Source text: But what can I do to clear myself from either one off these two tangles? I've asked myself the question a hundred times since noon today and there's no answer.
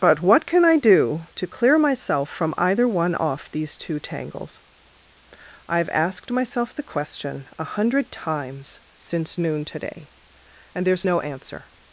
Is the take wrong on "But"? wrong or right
right